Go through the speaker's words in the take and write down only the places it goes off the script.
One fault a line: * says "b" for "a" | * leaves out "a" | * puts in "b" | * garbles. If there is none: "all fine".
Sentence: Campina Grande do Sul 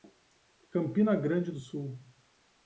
all fine